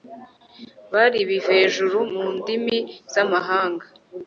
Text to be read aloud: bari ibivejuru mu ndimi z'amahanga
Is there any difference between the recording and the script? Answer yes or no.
no